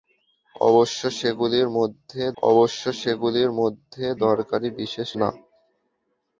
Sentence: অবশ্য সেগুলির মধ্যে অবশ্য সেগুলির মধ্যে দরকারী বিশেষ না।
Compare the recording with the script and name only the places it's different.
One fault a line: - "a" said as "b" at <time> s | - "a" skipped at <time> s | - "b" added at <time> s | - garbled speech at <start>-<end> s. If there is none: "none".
none